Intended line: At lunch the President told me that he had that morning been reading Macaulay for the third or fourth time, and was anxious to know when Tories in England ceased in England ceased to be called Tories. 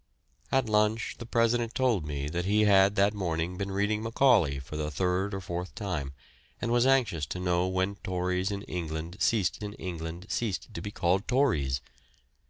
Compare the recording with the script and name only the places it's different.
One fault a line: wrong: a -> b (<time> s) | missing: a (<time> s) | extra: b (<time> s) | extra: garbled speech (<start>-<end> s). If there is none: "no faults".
no faults